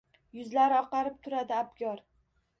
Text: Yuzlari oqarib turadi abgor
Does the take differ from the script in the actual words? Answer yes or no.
no